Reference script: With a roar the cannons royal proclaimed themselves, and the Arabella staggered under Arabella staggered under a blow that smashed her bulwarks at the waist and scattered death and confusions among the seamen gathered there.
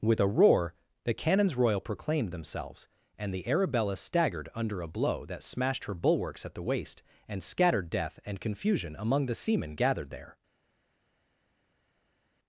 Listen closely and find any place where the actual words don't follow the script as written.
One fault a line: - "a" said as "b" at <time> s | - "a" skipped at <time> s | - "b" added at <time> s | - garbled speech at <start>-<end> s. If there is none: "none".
- "Arabella staggered under" skipped at 4.8 s
- "confusions" said as "confusion" at 8.4 s